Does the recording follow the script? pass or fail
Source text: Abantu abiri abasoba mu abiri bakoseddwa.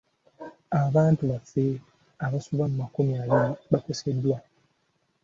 fail